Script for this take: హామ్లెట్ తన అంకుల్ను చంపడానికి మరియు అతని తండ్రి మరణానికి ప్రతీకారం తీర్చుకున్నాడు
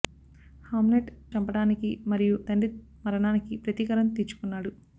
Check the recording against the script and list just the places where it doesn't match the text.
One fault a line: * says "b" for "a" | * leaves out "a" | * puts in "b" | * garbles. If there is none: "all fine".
* leaves out "తన అంకుల్ను"
* leaves out "అతని"